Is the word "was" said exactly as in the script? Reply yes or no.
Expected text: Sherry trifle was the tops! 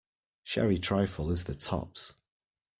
no